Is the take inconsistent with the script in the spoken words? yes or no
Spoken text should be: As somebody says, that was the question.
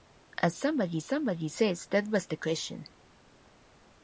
yes